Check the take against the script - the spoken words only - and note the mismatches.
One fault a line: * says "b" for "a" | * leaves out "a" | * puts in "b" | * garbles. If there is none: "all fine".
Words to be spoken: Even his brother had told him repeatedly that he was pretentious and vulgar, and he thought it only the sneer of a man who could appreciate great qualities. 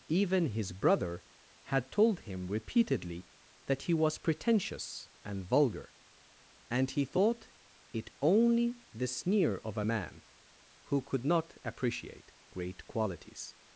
* puts in "not"